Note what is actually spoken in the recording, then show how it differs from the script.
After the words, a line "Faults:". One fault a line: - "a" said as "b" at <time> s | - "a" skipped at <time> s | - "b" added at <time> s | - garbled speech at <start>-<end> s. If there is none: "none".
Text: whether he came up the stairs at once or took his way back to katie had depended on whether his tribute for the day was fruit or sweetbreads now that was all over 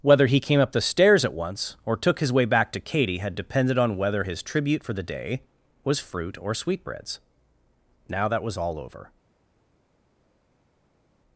whether he came up the stairs at once or took his way back to katie had depended on whether his tribute for the day was fruit or sweetbreads now that was all over
Faults:
none